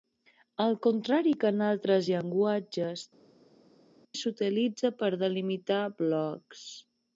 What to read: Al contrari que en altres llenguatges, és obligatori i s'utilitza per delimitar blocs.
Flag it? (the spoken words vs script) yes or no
yes